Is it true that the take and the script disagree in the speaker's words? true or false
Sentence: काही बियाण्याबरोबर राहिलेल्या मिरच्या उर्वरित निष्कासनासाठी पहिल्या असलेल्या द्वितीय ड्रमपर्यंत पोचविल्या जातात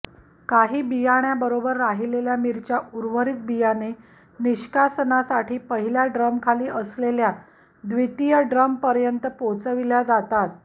true